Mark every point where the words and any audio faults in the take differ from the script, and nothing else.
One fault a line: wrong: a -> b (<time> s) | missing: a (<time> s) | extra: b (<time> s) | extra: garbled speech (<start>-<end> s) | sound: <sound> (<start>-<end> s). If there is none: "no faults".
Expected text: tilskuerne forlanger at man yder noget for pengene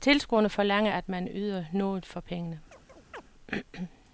sound: chirp (2.7-3.2 s)